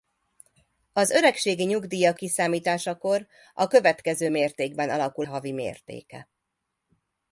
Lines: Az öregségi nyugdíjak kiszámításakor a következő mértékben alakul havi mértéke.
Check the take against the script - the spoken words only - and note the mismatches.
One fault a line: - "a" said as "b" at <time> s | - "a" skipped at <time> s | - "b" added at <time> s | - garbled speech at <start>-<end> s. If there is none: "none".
none